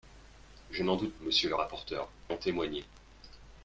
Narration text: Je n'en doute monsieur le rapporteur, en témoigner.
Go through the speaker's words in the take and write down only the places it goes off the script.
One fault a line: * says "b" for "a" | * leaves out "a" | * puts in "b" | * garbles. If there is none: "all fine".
all fine